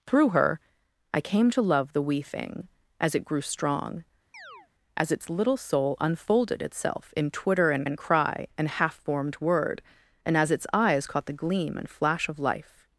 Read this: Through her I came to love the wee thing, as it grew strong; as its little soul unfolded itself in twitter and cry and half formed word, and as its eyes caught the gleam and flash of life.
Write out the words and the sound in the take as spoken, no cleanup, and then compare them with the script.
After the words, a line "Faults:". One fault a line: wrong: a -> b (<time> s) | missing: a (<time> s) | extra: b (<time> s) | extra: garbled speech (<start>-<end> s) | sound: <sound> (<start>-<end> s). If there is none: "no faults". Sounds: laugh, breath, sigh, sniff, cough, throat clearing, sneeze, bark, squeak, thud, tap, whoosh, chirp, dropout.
Through her I came to love the wee thing, as it grew strong; as its little soul unfolded itself in twitter and and cry and half formed word, and as its eyes caught the gleam and flash of life.
Faults:
sound: chirp (4.3-4.7 s)
extra: and (7.8 s)